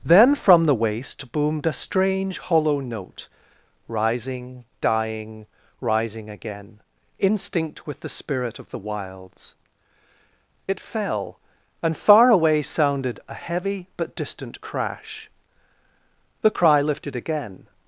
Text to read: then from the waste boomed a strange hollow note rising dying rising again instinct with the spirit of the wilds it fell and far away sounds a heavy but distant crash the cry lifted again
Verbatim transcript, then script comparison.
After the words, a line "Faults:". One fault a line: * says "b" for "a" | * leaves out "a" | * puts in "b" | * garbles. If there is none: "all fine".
then from the waste boomed a strange hollow note rising dying rising again instinct with the spirit of the wilds it fell and far away sounded a heavy but distant crash the cry lifted again
Faults:
* says "sounded" for "sounds"